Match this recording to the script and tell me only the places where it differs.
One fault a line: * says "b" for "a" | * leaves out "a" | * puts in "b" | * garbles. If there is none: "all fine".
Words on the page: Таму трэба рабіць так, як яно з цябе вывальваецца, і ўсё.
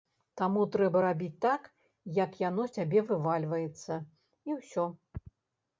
all fine